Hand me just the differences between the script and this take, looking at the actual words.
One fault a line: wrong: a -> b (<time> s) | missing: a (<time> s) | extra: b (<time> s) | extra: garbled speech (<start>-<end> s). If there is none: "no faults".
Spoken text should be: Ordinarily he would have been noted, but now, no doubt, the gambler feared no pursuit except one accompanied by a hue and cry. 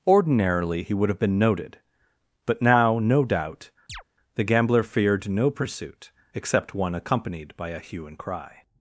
no faults